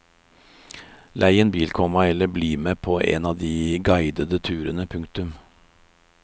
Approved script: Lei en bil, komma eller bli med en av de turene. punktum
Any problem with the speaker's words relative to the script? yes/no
yes